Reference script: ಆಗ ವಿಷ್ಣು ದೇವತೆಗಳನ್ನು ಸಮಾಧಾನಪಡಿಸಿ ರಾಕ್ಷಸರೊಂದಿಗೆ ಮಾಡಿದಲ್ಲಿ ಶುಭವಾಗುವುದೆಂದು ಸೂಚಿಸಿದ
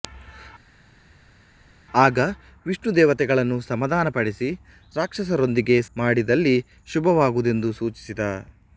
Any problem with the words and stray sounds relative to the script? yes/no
no